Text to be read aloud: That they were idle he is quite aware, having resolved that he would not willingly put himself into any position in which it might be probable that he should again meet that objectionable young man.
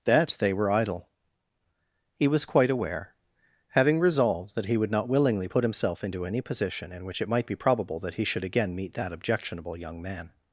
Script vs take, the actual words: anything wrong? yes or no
yes